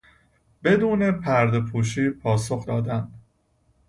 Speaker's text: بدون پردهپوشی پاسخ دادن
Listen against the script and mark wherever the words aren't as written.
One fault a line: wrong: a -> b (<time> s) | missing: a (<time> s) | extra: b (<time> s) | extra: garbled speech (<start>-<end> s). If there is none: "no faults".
no faults